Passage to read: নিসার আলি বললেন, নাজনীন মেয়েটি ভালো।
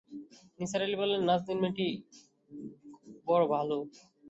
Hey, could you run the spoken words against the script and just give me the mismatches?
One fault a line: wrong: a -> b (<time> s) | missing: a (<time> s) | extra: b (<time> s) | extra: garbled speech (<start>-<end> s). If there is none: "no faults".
extra: বড় (3.3 s)